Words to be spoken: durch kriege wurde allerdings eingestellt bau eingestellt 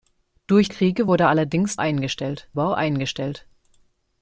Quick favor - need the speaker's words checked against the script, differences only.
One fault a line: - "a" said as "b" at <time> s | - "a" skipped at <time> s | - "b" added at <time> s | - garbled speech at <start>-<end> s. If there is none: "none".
none